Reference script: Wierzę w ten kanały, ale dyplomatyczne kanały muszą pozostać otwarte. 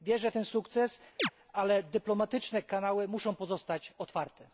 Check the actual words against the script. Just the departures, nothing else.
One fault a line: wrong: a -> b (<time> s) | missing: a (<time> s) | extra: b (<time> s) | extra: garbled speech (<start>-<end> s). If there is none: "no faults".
wrong: kanały -> sukces (0.4 s)